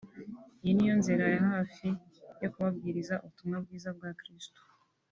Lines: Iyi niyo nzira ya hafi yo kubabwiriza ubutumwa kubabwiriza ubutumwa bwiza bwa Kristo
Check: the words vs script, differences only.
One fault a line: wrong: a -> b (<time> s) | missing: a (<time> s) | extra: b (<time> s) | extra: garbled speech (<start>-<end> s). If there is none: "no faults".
missing: kubabwiriza ubutumwa (3.6 s)